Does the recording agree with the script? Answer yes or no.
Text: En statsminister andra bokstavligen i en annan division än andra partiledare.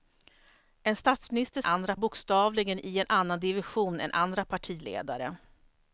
yes